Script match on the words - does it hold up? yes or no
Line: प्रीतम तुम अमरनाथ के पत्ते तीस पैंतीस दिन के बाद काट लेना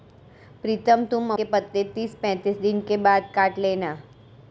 no